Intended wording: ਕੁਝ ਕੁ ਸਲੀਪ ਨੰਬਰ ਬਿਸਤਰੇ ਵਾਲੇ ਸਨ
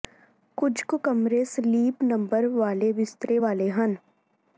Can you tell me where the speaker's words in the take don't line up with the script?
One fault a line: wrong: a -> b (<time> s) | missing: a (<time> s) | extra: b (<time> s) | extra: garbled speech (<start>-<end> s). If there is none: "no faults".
extra: ਕਮਰੇ (1.0 s)
extra: ਵਾਲੇ (2.5 s)
wrong: ਸਨ -> ਹਨ (3.7 s)